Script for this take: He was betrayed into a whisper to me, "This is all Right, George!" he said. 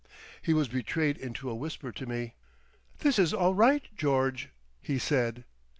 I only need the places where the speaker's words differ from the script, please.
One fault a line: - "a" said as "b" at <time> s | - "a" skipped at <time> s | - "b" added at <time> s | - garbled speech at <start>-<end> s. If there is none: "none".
none